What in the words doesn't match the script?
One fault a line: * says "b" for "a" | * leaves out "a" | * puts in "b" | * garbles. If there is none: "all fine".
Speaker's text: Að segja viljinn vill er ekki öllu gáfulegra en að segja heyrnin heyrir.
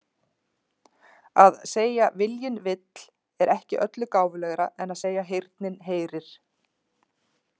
all fine